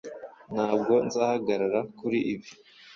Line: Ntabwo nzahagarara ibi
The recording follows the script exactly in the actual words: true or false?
false